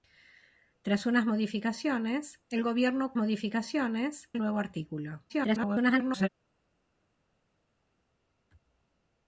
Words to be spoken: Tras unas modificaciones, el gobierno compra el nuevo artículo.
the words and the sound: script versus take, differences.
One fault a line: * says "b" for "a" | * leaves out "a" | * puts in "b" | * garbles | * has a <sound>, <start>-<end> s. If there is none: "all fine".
* says "modificaciones" for "compra"
* garbles